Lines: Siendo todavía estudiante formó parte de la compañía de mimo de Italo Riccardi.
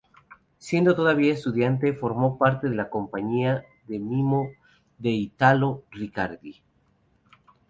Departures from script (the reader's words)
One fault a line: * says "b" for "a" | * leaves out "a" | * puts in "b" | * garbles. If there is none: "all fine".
* leaves out "de"